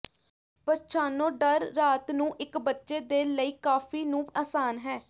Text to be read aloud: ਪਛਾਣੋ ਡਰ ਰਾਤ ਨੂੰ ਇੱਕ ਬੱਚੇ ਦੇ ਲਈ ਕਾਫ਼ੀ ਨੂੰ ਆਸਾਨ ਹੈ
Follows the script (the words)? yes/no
yes